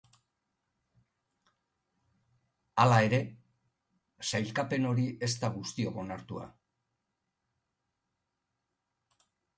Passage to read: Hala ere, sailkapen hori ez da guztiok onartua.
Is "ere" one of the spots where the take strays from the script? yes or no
no